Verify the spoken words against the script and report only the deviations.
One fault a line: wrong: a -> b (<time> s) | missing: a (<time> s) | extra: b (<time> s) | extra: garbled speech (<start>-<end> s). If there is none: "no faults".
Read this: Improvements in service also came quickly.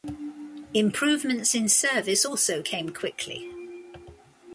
no faults